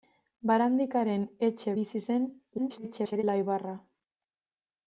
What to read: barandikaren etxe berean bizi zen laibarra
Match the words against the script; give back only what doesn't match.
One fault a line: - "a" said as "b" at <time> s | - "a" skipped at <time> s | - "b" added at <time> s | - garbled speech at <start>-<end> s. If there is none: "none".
- "berean" skipped at 1.8 s
- garbled speech at 2.6-3.2 s